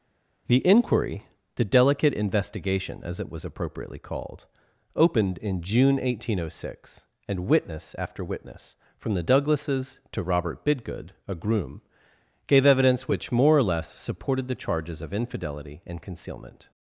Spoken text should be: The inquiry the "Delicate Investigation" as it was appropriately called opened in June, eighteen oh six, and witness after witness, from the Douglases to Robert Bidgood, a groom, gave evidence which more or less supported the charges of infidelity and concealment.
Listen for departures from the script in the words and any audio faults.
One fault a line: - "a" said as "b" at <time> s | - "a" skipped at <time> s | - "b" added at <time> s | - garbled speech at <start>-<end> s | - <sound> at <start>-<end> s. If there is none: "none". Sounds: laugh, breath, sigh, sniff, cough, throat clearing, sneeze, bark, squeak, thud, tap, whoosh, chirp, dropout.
none